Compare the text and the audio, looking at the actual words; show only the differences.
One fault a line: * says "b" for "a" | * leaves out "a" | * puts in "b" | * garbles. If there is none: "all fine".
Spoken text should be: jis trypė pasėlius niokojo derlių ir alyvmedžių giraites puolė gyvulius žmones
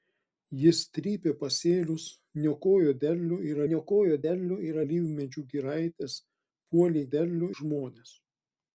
* puts in "niokojo derlių ir"
* says "derlių" for "gyvulius"